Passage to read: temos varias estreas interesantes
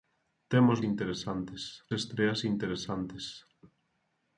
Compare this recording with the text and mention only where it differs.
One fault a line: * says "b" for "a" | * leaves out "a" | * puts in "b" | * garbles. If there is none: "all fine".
* says "interesantes" for "varias"